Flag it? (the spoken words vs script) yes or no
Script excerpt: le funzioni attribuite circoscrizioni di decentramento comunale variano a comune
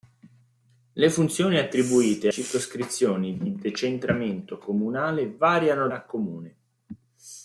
no